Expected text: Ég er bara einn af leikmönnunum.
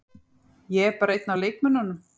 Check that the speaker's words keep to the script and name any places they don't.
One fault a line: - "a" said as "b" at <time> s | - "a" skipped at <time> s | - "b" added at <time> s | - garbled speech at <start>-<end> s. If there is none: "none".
none